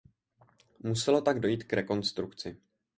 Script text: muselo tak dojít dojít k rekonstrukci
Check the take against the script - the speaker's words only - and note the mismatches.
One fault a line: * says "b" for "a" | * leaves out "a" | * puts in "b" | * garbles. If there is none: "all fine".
* leaves out "dojít"